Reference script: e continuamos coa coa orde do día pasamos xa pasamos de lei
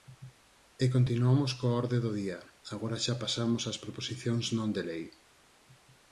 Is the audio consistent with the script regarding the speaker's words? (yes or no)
no